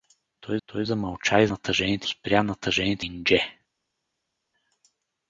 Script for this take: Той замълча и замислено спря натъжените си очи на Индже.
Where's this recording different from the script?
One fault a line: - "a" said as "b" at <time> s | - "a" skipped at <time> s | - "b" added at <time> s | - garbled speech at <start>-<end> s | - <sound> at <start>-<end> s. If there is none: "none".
- "той" added at 0.6 s
- "замислено" said as "натъжените" at 1.5 s
- "си очи на" skipped at 3.1 s